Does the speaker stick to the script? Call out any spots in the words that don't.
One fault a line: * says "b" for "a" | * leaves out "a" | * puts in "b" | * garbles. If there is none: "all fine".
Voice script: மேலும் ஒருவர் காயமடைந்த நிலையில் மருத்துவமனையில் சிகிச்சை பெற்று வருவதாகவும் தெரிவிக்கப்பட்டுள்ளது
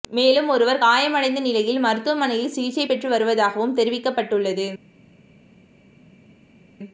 all fine